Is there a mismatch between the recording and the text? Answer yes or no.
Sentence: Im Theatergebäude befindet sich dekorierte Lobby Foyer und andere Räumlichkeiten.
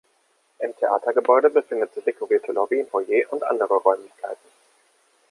no